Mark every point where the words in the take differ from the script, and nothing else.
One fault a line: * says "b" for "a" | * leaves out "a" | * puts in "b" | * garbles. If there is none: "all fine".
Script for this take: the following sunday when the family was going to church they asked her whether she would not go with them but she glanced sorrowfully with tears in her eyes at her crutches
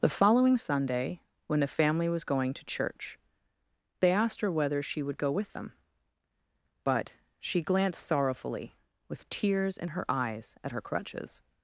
* leaves out "not"